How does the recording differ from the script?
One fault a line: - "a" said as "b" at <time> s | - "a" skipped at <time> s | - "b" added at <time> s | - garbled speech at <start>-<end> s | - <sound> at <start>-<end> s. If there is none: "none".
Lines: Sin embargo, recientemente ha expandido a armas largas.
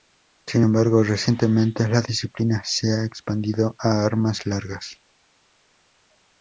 - "la disciplina se" added at 1.9 s